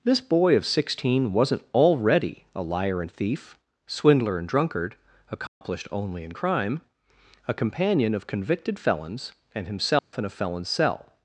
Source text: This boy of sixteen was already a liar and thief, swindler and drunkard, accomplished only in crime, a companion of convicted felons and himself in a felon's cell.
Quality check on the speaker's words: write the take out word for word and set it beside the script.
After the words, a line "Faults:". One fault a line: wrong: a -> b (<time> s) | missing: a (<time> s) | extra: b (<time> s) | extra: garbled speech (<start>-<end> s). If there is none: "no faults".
This boy of sixteen wasn't already a liar and thief, swindler and drunkard, accomplished only in crime, a companion of convicted felons and himself in a felon's cell.
Faults:
wrong: was -> wasn't (1.3 s)